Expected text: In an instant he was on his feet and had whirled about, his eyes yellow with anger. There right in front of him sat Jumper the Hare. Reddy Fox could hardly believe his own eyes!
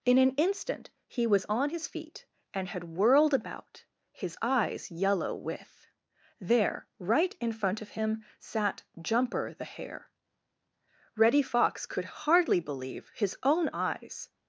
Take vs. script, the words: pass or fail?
fail